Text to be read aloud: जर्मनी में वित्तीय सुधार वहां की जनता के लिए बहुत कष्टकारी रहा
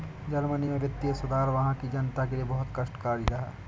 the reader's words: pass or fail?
pass